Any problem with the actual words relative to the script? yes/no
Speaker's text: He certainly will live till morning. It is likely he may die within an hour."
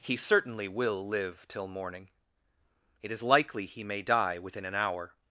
no